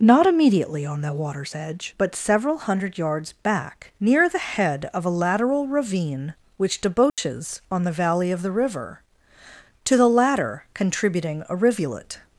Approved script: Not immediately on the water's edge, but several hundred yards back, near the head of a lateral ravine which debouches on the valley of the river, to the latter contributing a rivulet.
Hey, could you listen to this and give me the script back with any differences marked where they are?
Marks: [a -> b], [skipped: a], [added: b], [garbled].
Not immediately on the water's edge, but several hundred yards back, near the head of a lateral ravine which debouches on the valley of the river, to the latter contributing a rivulet.